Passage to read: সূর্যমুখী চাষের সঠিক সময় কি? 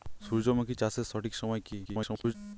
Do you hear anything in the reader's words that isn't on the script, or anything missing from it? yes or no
yes